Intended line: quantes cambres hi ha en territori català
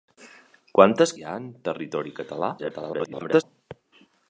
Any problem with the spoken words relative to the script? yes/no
yes